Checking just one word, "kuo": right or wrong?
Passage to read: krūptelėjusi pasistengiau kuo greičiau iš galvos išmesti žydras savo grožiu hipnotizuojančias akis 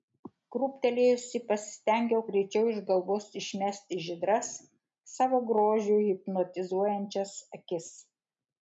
wrong